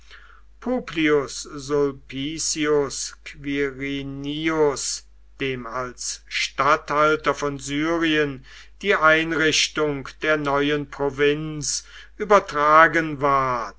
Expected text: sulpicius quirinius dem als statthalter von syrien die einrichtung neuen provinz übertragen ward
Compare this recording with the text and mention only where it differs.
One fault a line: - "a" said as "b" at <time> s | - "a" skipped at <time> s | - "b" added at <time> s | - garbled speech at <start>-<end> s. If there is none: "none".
- "der" added at 10.2 s